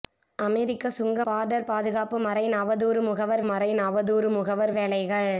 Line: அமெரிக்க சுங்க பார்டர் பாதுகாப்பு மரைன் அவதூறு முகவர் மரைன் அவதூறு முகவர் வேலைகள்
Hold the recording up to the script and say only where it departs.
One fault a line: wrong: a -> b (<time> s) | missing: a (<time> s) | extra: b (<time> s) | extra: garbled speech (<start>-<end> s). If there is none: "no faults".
no faults